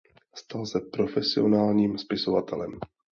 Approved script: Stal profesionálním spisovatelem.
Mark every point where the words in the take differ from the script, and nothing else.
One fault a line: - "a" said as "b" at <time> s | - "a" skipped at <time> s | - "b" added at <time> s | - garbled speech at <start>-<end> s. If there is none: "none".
- "se" added at 0.7 s